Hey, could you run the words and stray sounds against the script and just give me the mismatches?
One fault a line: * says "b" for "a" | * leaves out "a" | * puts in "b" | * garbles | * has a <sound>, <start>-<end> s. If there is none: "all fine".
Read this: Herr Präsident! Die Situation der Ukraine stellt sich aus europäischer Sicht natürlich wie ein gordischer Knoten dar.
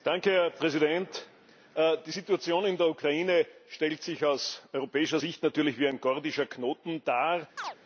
* puts in "in"
* has a chirp, 7.6-7.8 s